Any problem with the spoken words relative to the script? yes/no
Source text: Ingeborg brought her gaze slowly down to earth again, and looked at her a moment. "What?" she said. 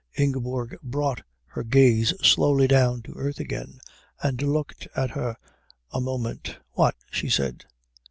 no